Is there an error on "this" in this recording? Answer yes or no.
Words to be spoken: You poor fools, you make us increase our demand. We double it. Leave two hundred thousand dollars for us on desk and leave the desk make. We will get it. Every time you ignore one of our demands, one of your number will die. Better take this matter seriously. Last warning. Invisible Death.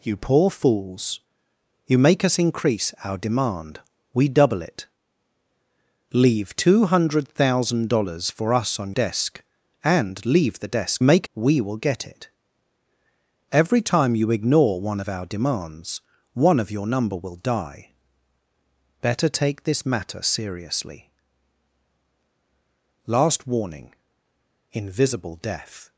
no